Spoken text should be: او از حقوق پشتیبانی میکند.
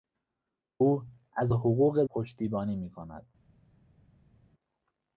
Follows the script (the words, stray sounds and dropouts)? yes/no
yes